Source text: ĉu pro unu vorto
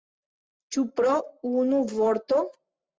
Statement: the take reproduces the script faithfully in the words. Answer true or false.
true